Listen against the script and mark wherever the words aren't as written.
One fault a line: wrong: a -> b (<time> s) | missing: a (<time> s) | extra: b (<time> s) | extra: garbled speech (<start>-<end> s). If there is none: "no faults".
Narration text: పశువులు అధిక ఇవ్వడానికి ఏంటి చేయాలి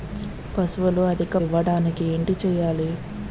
no faults